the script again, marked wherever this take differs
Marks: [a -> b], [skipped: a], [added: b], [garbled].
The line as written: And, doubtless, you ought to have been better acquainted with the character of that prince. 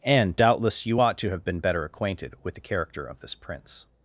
And, doubtless, you ought to have been better acquainted with the character of [that -> this] prince.